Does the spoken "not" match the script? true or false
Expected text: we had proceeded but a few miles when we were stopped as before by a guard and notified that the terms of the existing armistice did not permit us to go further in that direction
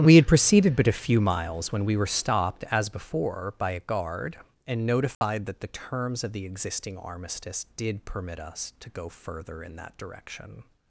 false